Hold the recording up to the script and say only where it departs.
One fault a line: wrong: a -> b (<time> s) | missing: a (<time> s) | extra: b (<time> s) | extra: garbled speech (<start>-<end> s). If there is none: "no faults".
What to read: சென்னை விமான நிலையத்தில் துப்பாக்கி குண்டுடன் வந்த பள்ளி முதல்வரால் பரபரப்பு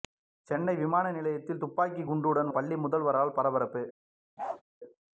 missing: வந்த (2.5 s)